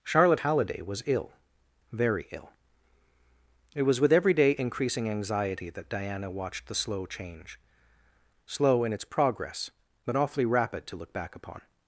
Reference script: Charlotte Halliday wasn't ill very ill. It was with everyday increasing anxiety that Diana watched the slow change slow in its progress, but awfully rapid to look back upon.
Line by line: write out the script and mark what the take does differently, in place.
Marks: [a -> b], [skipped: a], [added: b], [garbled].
Charlotte Halliday [wasn't -> was] ill very ill. It was with everyday increasing anxiety that Diana watched the slow change slow in its progress, but awfully rapid to look back upon.